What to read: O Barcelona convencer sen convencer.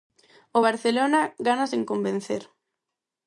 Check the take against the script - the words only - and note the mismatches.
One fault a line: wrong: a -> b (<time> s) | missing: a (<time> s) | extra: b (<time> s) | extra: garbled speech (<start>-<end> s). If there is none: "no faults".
wrong: convencer -> gana (1.5 s)